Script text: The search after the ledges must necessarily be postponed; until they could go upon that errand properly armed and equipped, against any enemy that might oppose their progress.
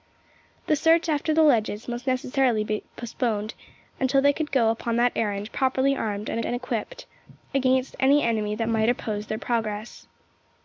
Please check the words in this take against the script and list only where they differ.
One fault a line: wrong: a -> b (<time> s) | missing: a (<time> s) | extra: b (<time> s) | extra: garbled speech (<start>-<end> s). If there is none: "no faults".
extra: and (6.4 s)